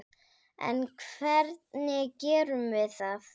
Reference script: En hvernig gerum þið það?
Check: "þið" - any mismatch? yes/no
yes